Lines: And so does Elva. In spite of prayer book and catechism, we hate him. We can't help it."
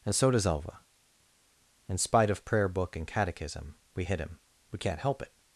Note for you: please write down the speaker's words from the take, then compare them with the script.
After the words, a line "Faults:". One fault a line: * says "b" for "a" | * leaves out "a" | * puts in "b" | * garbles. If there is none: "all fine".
And so does Elva. In spite of prayer book and catechism, we hit him. We can't help it."
Faults:
* says "hit" for "hate"